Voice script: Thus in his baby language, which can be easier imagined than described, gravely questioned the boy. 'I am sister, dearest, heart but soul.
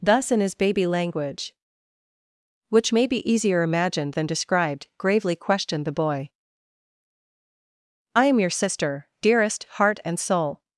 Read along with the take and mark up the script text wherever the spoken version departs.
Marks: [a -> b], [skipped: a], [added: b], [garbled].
Thus in his baby language, which [can -> may] be easier imagined than described, gravely questioned the boy. 'I am [added: your] sister, dearest, heart [but -> and] soul.